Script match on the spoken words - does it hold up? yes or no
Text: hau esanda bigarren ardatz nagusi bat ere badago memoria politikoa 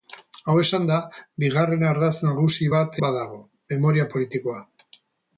no